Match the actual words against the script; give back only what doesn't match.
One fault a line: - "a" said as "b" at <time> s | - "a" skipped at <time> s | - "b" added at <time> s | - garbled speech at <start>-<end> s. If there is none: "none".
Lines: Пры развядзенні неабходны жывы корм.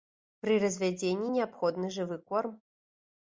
none